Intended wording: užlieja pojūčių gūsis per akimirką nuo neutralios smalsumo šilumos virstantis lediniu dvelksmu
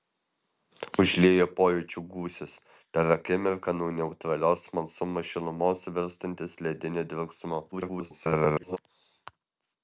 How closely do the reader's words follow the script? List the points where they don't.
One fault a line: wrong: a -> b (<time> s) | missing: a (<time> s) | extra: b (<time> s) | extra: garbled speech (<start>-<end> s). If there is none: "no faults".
extra: garbled speech (7.7-8.8 s)